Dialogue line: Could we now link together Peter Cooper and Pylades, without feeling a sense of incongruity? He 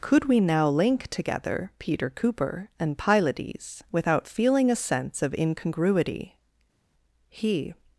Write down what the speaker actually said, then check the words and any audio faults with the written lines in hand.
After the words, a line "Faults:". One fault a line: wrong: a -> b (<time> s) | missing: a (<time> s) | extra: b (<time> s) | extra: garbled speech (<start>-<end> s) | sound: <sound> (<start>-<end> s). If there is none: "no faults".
Could we now link together Peter Cooper and Pylades, without feeling a sense of incongruity? He
Faults:
no faults